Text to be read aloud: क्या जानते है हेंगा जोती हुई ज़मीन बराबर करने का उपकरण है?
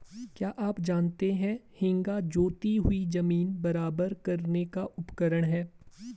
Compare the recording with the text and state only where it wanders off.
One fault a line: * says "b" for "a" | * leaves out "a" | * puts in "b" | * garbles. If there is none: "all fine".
* puts in "आप"